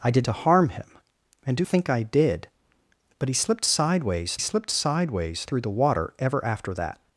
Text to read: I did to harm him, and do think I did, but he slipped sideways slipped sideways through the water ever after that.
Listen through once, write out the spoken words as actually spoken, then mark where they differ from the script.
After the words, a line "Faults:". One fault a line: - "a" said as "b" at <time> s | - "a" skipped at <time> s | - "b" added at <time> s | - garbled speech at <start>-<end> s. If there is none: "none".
I did to harm him, and do think I did, but he slipped sideways slipped sideways through the water ever after that.
Faults:
none